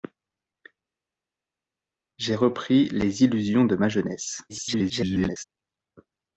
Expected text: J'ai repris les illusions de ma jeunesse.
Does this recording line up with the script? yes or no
no